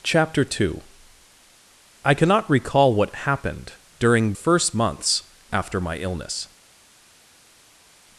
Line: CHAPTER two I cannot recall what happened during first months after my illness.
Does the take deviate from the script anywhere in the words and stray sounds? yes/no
no